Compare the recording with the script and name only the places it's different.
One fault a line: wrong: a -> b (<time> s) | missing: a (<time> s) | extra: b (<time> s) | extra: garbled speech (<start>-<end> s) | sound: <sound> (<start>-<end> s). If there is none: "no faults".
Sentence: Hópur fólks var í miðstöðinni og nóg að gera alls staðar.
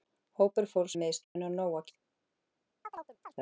missing: var (0.9 s)
sound: dropout (1.2-1.4 s)
missing: gera alls (1.9 s)
sound: chirp (2.8-3.4 s)